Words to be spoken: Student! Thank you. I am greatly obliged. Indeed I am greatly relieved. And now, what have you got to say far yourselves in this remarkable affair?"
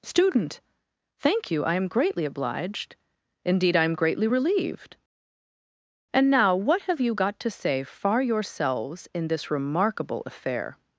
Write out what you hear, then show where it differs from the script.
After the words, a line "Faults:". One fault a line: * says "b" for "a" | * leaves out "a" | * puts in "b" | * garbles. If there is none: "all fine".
Student! Thank you. I am greatly obliged. Indeed I am greatly relieved. And now, what have you got to say far yourselves in this remarkable affair?"
Faults:
all fine